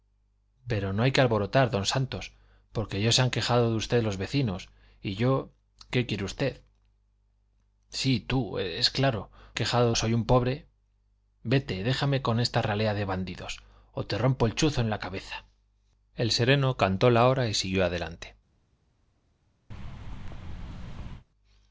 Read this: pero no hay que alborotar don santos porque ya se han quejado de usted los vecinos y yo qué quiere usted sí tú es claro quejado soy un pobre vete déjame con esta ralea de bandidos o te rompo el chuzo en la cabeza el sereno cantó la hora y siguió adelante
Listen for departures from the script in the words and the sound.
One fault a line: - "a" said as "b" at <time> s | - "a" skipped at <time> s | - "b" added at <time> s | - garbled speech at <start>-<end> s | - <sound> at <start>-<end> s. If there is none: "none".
- thud at 19.7-21.3 s